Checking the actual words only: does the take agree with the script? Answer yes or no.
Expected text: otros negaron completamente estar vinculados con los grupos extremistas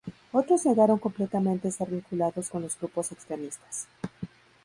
yes